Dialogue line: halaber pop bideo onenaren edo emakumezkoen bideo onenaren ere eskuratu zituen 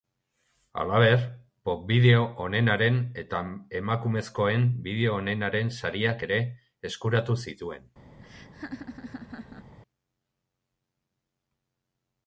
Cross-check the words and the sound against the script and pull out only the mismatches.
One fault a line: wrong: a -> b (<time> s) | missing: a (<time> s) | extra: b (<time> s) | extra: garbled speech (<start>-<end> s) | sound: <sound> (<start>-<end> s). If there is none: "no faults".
wrong: edo -> eta (3.2 s)
extra: sariak (5.8 s)
sound: laugh (8.2-9.8 s)